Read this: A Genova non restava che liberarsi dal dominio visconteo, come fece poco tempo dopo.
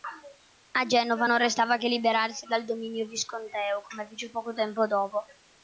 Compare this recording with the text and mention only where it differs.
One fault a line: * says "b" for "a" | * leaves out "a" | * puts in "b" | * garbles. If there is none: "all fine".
all fine